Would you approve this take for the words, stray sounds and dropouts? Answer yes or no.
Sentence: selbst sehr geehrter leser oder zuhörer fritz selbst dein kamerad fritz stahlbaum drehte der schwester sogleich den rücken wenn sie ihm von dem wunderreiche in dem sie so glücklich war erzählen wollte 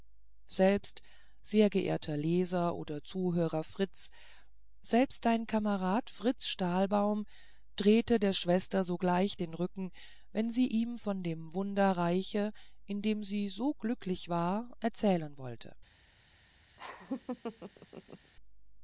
no